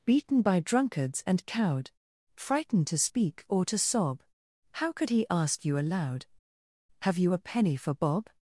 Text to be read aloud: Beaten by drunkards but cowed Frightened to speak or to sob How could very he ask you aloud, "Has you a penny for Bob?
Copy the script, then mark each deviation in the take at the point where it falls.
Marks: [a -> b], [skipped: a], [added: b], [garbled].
Beaten by drunkards [but -> and] cowed Frightened to speak or to sob How could [skipped: very] he ask you aloud, ["Has -> Have] you a penny for Bob?